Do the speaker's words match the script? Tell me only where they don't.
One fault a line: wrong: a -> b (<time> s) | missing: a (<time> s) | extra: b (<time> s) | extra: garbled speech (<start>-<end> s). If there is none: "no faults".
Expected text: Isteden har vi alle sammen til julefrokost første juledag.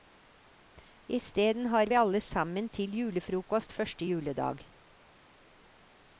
no faults